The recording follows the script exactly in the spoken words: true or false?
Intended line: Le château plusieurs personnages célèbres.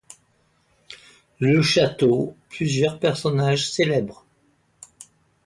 true